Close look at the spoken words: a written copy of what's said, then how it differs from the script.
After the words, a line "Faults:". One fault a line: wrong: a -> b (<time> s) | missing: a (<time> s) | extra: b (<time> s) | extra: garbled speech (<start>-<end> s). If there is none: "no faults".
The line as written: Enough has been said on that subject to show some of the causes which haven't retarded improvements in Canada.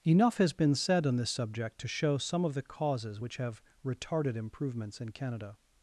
Enough has been said on this subject to show some of the causes which have retarded improvements in Canada.
Faults:
wrong: that -> this (1.2 s)
wrong: haven't -> have (3.3 s)